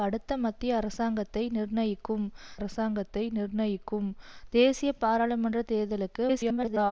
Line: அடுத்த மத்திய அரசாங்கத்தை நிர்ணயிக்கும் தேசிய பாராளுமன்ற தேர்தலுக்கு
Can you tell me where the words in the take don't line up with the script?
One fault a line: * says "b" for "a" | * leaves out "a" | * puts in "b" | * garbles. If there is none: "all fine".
* puts in "அரசாங்கத்தை நிர்ணயிக்கும்"
* garbles